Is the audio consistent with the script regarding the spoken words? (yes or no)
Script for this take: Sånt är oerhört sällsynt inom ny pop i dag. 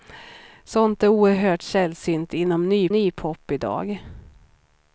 no